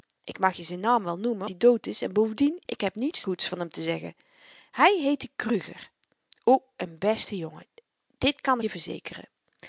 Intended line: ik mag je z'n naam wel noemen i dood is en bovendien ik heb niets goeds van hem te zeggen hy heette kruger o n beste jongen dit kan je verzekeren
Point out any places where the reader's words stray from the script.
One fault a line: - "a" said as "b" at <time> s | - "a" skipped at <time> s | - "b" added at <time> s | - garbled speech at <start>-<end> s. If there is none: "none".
none